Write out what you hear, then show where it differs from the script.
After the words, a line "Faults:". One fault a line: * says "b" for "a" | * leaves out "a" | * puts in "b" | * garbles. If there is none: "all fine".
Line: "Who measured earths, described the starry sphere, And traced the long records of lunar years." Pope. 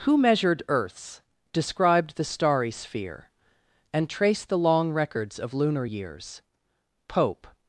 "Who measured earths, described the starry sphere, And traced the long records of lunar years." Pope.
Faults:
all fine